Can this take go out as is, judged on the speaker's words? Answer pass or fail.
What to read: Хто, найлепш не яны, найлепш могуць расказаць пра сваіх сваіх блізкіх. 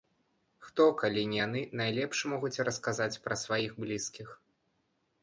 fail